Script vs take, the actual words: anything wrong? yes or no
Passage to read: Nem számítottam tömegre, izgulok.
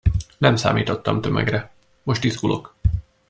yes